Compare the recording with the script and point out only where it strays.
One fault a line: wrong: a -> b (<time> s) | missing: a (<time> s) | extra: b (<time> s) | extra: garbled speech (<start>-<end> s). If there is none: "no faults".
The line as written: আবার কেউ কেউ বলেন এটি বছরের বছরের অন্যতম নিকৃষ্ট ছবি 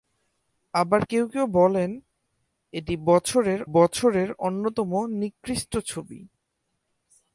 no faults